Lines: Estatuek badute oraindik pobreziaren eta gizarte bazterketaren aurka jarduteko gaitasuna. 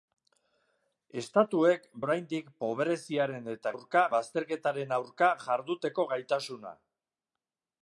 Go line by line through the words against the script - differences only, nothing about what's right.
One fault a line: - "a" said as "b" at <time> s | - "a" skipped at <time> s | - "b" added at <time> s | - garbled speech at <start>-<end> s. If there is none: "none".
- "badute" skipped at 1.8 s
- "gizarte" said as "aurka" at 3.7 s